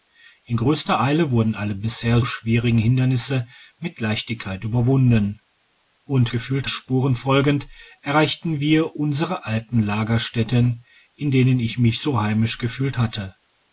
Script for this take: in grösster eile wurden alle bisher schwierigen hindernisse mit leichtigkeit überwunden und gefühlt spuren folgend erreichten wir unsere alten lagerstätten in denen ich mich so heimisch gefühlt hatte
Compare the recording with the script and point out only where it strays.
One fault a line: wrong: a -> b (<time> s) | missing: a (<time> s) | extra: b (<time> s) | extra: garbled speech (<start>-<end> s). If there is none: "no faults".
no faults